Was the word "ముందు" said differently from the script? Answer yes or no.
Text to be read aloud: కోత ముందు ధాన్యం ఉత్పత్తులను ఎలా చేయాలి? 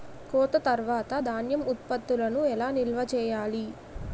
yes